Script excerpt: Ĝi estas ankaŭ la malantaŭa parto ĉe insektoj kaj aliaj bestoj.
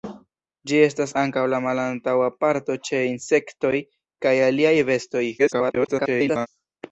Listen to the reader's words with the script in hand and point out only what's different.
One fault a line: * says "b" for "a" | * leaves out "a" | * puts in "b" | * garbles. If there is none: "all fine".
* garbles